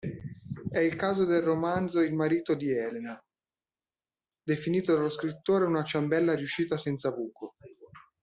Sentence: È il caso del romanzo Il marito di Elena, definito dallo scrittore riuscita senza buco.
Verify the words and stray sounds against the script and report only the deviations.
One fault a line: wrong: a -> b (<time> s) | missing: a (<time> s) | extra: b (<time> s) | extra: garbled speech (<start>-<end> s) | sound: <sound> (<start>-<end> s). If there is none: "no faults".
extra: una ciambella (5.6 s)